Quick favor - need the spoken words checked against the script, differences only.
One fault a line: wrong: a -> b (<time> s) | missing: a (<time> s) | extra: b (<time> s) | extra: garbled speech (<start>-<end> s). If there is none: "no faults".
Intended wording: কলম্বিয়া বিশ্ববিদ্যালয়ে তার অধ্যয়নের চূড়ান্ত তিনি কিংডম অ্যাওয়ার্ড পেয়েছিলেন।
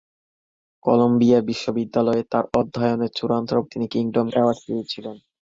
no faults